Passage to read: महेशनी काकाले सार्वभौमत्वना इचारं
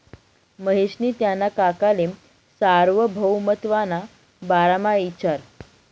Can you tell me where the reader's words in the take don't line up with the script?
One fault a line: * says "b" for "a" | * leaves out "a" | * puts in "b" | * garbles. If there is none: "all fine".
* puts in "त्याना"
* puts in "बारामा"